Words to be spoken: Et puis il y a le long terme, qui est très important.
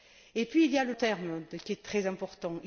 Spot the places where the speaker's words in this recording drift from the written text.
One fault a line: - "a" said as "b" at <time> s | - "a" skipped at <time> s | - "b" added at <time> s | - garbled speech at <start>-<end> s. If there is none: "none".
- "long" skipped at 0.9 s